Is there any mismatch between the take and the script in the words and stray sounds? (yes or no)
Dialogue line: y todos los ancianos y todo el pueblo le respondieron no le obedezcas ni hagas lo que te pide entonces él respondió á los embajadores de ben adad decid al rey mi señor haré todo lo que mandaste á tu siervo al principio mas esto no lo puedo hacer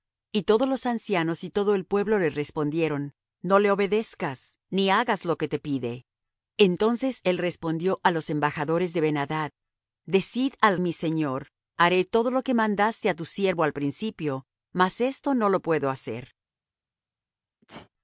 yes